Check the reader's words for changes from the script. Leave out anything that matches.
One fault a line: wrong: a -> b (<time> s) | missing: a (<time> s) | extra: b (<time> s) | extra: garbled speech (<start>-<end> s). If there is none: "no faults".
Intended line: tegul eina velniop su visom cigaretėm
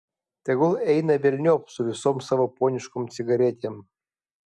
extra: savo poniškom (2.3 s)